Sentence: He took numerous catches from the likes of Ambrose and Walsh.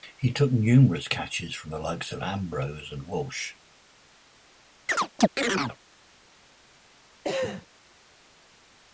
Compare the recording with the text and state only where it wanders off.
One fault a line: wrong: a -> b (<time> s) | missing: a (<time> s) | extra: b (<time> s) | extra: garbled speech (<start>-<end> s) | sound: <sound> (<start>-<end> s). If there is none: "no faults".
sound: chirp (4.9-5.8 s)
sound: cough (7.2-7.7 s)